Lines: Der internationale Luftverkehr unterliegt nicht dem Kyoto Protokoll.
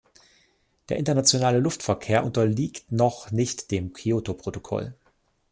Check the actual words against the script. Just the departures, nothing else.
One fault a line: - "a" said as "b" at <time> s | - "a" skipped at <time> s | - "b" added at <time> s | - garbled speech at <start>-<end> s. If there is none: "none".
- "noch" added at 2.9 s